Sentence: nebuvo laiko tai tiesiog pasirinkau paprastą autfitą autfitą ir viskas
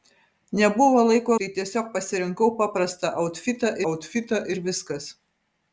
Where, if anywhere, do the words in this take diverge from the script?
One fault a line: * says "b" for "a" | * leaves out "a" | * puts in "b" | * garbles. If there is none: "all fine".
all fine